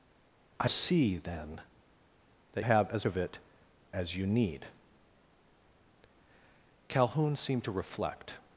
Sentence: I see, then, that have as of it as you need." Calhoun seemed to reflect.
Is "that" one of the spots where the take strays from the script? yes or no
no